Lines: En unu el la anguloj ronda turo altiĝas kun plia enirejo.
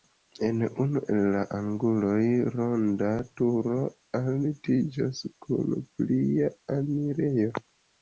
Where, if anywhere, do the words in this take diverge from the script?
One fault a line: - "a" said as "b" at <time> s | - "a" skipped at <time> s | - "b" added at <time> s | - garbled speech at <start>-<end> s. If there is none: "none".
none